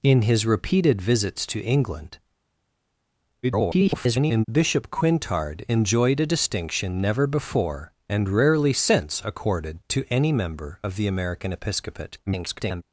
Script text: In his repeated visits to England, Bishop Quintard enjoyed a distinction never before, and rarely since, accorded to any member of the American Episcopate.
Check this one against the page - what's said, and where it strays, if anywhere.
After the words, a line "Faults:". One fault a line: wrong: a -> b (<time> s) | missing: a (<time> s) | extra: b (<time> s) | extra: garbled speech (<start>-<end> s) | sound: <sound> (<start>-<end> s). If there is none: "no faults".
In his repeated visits to England, [garbled] Bishop Quintard enjoyed a distinction never before, and rarely since, accorded to any member of the American Episcopate. [garbled]
Faults:
extra: garbled speech (3.4-4.4 s)
extra: garbled speech (12.3-12.8 s)